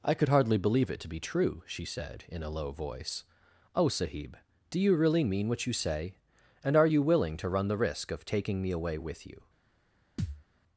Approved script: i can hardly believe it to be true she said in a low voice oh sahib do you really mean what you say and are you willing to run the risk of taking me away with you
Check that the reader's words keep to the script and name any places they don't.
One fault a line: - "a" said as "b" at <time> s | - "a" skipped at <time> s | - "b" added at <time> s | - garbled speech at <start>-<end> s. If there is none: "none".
- "can" said as "could" at 0.1 s